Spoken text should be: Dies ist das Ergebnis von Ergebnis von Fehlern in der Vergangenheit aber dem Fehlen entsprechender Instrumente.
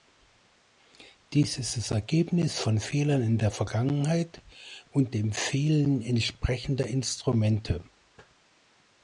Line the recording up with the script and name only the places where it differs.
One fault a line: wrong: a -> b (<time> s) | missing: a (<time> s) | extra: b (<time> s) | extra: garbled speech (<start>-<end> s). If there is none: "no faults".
missing: Ergebnis von (2.8 s)
wrong: aber -> und (4.9 s)